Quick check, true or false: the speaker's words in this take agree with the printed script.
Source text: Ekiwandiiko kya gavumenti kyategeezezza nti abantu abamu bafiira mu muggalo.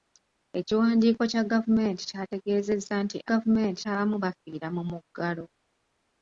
false